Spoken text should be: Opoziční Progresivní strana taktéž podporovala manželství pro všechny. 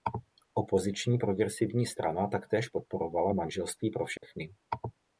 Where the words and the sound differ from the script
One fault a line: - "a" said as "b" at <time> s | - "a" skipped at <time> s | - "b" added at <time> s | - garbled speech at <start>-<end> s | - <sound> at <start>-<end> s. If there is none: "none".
- dropout at 4.2-4.2 s